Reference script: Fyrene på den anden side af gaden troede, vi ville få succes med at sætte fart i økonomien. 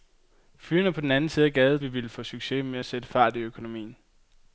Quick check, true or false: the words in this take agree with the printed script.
false